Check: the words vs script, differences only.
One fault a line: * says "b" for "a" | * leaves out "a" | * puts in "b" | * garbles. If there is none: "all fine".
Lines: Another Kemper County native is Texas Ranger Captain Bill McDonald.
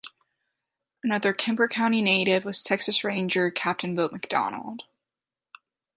* says "was" for "is"